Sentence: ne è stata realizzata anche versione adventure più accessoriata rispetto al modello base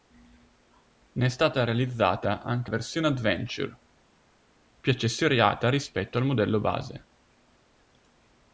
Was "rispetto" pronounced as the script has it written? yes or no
yes